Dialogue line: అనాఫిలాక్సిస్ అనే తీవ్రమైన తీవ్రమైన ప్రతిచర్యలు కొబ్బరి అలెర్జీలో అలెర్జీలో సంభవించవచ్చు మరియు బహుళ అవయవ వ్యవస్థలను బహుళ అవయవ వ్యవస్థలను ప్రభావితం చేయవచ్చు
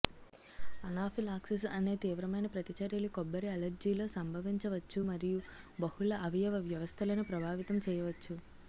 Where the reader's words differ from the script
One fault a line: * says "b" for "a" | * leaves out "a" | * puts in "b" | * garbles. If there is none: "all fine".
* leaves out "తీవ్రమైన"
* leaves out "అలెర్జీలో"
* leaves out "బహుళ అవయవ వ్యవస్థలను"